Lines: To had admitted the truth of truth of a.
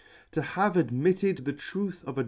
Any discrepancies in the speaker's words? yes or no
yes